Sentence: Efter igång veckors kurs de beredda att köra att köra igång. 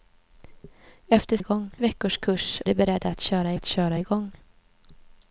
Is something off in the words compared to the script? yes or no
no